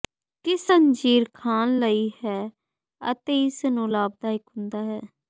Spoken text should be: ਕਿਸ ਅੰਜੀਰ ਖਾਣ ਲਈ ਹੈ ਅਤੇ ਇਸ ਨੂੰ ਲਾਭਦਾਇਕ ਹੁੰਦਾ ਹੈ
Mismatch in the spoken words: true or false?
false